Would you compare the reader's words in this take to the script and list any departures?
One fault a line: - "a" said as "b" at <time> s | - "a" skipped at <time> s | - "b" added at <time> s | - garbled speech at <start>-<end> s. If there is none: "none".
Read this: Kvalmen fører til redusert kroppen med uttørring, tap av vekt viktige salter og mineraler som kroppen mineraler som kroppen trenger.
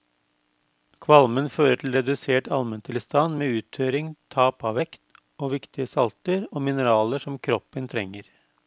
- "kroppen" said as "almentilstand" at 2.6 s
- "og" added at 5.4 s
- "mineraler som kroppen" skipped at 7.9 s